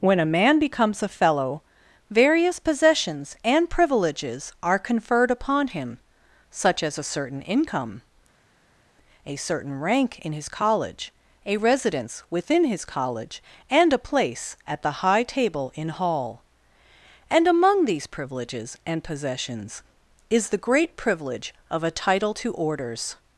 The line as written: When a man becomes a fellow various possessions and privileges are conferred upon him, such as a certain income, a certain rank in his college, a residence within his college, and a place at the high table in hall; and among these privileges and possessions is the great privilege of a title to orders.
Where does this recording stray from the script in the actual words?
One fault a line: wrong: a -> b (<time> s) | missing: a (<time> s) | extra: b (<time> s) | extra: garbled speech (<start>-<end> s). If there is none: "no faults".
no faults